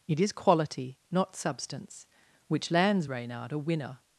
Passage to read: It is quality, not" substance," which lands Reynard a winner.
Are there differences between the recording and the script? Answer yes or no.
no